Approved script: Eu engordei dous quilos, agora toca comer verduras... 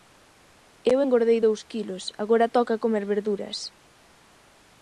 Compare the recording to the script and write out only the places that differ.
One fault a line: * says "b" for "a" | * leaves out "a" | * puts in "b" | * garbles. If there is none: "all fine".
all fine